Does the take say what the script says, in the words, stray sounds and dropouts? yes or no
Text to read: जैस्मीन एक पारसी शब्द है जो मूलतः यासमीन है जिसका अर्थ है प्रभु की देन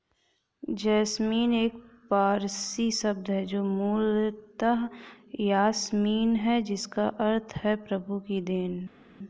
yes